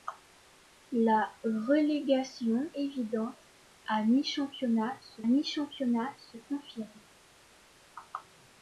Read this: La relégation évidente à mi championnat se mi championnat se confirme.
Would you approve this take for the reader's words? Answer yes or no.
yes